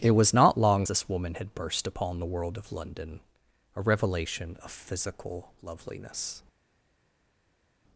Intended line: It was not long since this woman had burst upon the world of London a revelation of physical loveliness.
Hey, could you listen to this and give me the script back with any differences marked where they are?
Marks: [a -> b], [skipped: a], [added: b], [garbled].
It was not long [skipped: since] this woman had burst upon the world of London a revelation of physical loveliness.